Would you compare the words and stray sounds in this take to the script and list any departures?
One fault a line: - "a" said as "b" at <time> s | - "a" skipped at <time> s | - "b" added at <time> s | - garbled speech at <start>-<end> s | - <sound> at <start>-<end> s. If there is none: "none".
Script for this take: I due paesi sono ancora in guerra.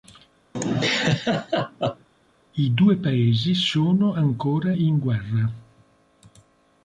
- laugh at 0.5-2.1 s